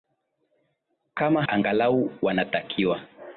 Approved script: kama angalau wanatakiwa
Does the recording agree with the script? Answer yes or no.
yes